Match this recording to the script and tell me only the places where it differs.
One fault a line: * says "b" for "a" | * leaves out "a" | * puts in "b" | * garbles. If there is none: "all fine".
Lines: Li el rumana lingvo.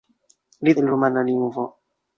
all fine